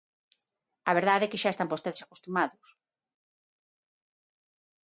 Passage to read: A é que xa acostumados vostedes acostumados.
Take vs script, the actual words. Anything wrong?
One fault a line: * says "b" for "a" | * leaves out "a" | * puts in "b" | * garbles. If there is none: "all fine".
* puts in "verdade"
* says "están" for "acostumados"